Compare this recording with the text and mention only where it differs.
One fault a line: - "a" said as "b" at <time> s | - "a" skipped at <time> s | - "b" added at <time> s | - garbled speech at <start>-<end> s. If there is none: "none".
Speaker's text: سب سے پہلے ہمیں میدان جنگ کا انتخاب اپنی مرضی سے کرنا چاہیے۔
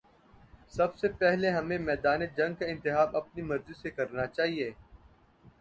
none